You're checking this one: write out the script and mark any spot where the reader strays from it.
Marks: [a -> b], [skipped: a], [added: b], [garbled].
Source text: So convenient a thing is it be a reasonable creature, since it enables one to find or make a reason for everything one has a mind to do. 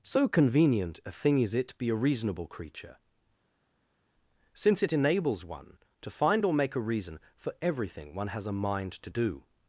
So convenient a thing is it be a reasonable creature, since it enables one to find or make a reason for everything one has a mind to do.